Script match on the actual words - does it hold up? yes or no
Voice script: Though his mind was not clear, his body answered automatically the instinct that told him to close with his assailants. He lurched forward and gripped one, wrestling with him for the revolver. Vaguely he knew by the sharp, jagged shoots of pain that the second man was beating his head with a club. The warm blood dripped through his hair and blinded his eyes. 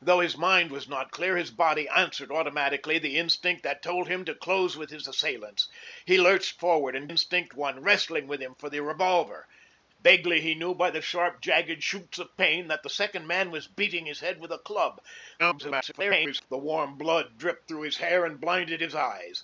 no